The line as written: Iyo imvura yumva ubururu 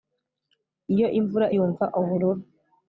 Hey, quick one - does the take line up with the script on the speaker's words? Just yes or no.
yes